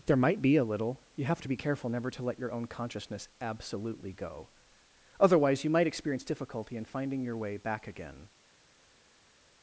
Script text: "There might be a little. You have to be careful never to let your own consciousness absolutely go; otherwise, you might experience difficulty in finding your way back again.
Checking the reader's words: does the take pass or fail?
pass